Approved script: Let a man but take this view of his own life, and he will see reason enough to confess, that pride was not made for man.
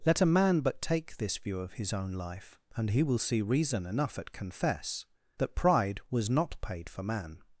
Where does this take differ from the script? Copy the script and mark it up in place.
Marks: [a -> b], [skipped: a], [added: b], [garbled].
Let a man but take this view of his own life, and he will see reason enough [to -> at] confess, that pride was not [made -> paid] for man.